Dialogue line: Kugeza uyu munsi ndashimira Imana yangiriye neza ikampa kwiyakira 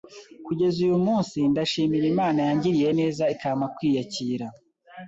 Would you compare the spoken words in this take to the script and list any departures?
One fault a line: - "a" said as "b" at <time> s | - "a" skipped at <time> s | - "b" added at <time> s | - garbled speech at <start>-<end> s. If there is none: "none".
none